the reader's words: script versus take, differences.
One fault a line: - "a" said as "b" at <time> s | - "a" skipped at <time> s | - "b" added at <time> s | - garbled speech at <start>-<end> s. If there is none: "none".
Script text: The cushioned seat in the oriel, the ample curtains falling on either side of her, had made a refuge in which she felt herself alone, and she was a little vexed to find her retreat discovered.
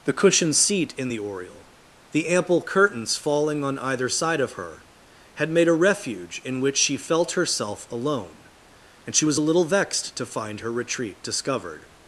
none